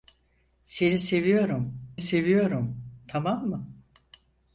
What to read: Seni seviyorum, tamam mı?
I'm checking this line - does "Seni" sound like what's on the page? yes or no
yes